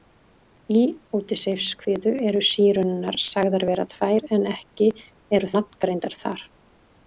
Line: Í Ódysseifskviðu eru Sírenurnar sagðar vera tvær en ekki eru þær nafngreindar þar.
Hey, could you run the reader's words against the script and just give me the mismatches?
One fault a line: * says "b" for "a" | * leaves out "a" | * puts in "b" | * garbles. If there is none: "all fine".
* leaves out "þær"